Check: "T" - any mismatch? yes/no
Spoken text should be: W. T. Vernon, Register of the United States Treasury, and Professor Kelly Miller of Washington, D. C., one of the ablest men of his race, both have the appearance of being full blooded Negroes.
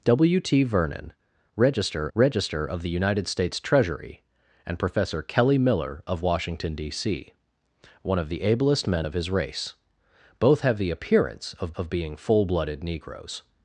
no